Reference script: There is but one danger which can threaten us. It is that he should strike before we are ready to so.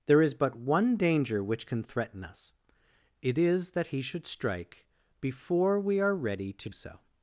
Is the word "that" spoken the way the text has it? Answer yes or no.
yes